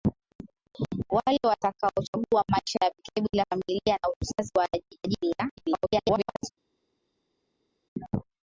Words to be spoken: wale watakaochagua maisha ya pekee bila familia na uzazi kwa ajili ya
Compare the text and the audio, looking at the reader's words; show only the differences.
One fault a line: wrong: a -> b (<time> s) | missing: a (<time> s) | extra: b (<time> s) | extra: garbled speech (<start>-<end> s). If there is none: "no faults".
missing: kwa (4.5 s)
extra: garbled speech (5.6-6.5 s)